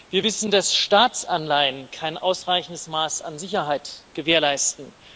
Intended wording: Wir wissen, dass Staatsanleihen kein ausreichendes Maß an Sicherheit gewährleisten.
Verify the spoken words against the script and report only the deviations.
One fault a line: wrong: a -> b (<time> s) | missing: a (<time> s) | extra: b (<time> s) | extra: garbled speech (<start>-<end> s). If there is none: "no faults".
no faults